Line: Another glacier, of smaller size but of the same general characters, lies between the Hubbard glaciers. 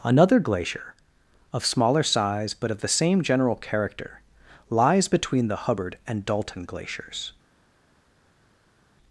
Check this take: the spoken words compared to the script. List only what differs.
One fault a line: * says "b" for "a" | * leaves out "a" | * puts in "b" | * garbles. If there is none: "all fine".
* says "character" for "characters"
* puts in "and Dalton"